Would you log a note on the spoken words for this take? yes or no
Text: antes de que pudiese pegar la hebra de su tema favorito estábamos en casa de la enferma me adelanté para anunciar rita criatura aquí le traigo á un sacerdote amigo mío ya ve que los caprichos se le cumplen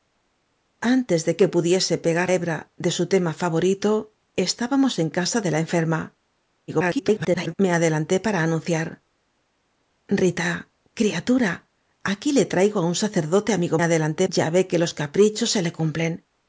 yes